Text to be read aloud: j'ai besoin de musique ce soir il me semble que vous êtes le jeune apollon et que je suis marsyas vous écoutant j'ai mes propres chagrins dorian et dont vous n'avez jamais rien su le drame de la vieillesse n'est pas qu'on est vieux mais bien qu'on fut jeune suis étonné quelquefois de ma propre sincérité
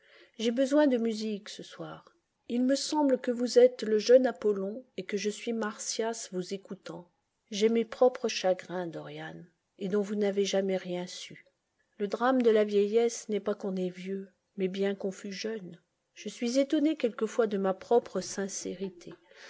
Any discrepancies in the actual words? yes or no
yes